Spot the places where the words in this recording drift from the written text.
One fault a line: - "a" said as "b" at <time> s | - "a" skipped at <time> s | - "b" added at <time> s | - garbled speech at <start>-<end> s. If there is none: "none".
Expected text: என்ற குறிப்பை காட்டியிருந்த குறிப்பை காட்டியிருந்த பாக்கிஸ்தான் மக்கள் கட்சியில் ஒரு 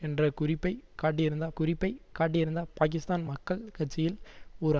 none